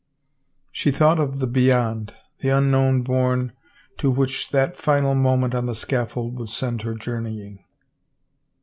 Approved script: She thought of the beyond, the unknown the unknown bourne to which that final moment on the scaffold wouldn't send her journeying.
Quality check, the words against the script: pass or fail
fail